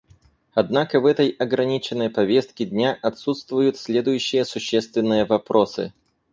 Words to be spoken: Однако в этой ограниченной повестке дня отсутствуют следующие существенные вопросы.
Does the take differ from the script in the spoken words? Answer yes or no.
no